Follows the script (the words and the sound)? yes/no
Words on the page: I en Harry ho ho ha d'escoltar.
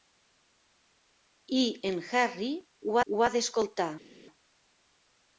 yes